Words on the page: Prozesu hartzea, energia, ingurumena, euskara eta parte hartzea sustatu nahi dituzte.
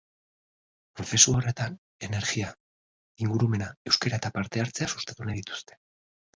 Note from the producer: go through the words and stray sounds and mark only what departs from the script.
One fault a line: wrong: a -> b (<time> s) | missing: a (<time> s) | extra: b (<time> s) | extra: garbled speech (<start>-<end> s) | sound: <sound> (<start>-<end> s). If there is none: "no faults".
wrong: hartzea -> horretan (1.4 s)